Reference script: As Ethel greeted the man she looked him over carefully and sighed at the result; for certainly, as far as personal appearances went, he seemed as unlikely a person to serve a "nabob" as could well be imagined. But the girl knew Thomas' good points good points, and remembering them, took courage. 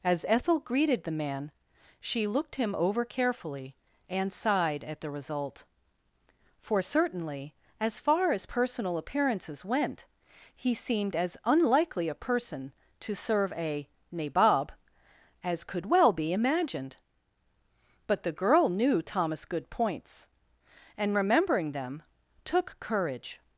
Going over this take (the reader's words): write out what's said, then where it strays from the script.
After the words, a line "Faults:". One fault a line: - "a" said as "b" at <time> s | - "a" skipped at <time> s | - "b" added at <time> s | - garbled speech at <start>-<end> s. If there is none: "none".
As Ethel greeted the man she looked him over carefully and sighed at the result; for certainly, as far as personal appearances went, he seemed as unlikely a person to serve a "nabob" as could well be imagined. But the girl knew Thomas' good points, and remembering them, took courage.
Faults:
- "good points" skipped at 20.3 s